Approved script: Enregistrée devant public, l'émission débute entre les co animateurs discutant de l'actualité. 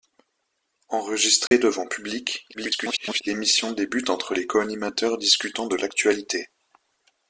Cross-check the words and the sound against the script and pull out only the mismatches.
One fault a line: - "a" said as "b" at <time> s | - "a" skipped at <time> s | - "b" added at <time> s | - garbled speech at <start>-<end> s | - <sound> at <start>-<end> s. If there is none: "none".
- dropout at 1.5-1.5 s
- garbled speech at 2.5-3.2 s